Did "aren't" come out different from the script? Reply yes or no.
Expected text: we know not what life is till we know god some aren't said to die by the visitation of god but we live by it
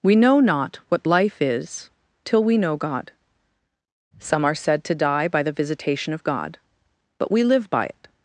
yes